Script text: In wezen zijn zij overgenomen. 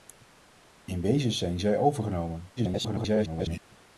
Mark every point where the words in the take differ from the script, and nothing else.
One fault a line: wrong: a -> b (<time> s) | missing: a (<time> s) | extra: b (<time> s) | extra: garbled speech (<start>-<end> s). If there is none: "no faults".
extra: garbled speech (2.6-3.6 s)